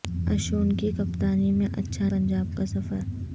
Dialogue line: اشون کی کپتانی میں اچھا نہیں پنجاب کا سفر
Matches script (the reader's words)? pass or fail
fail